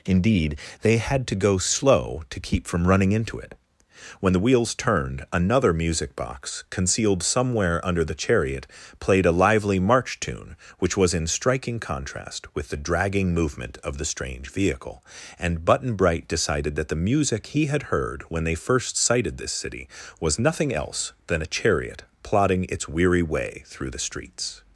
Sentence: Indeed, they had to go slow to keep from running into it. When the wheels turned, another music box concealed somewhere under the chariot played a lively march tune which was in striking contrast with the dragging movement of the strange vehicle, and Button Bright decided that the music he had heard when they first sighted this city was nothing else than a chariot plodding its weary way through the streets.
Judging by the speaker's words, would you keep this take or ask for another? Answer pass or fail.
pass